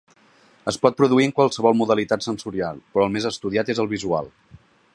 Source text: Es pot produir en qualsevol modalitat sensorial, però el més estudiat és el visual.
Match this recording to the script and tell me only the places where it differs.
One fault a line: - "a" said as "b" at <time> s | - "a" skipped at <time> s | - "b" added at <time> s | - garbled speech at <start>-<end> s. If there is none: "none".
none